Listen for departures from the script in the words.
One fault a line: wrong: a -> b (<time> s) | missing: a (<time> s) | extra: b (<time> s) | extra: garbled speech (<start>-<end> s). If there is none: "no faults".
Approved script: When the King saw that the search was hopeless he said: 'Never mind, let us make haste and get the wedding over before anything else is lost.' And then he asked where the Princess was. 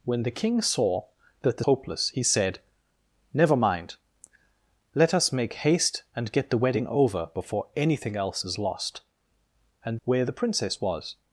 missing: search was (1.6 s)
missing: then he asked (10.0 s)